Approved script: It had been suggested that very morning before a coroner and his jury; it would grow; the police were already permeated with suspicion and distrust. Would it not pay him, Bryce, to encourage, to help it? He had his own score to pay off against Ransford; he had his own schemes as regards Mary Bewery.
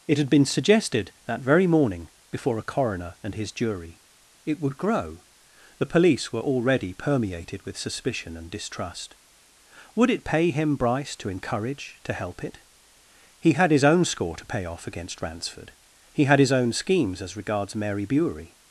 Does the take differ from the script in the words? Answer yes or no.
yes